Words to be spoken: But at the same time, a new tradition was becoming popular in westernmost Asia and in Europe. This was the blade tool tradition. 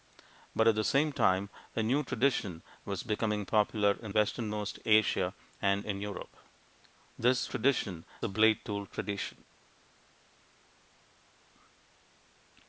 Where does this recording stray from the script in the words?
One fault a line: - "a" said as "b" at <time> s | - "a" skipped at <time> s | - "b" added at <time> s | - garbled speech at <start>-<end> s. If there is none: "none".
- "was" said as "tradition" at 7.5 s